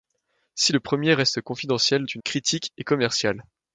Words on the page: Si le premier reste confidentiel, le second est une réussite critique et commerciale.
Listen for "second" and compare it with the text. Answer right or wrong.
wrong